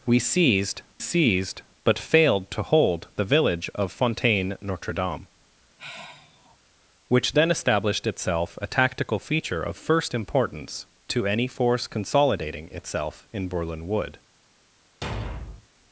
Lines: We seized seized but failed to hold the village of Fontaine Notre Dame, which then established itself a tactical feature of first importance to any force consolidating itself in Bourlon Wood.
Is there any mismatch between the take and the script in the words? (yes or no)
no